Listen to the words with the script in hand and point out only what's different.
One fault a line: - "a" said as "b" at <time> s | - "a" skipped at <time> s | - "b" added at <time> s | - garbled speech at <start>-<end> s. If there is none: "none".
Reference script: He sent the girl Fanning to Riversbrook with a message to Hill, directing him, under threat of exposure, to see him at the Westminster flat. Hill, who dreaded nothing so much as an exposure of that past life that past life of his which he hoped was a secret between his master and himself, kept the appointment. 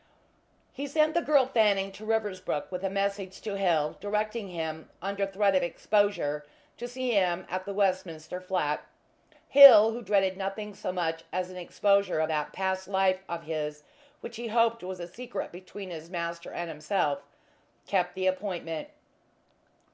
- "that past life" skipped at 13.2 s